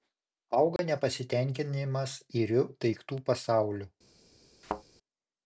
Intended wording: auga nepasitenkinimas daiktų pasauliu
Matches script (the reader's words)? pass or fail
fail